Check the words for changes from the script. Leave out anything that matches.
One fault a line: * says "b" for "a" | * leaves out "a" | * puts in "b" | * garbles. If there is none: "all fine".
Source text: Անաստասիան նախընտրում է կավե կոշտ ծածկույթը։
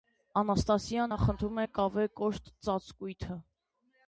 all fine